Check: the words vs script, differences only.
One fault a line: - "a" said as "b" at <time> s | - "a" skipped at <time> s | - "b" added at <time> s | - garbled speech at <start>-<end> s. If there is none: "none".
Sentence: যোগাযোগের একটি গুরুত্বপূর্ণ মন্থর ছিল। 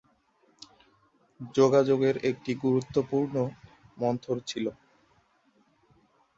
none